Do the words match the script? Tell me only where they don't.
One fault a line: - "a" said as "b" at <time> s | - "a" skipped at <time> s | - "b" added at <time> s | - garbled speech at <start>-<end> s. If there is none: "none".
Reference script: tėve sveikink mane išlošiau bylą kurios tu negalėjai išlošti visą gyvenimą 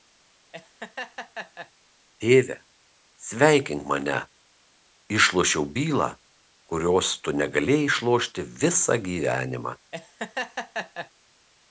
none